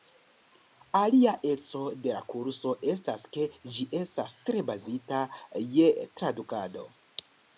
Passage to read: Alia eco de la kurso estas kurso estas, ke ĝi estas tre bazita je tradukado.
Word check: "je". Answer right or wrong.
right